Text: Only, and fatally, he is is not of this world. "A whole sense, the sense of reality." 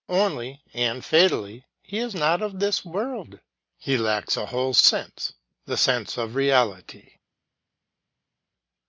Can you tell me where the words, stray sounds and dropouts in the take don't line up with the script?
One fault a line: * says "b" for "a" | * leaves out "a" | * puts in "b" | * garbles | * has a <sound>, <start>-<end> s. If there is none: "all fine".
* leaves out "is"
* puts in "He lacks"